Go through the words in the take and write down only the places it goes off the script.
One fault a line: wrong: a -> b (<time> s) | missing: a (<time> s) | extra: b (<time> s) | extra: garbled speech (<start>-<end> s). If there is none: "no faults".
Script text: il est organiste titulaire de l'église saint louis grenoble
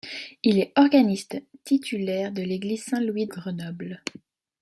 no faults